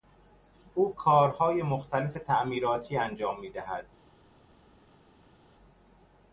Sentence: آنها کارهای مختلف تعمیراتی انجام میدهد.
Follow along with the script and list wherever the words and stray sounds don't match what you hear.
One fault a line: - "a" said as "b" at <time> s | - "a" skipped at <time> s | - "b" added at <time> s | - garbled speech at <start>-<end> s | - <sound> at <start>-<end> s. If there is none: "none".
- "آنها" said as "او" at 0.8 s